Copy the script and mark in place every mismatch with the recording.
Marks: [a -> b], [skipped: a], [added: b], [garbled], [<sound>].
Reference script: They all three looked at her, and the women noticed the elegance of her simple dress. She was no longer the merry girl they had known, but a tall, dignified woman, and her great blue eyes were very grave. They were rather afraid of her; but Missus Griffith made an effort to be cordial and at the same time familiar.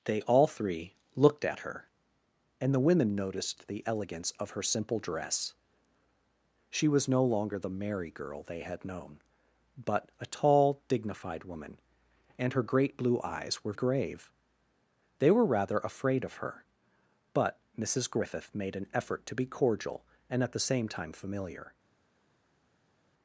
They all three looked at her, and the women noticed the elegance of her simple dress. She was no longer the merry girl they had known, but a tall, dignified woman, and her great blue eyes were [skipped: very] grave. They were rather afraid of her; but Missus Griffith made an effort to be cordial and at the same time familiar.